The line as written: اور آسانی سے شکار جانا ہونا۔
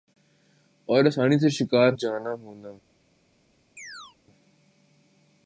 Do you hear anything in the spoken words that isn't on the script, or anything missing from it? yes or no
no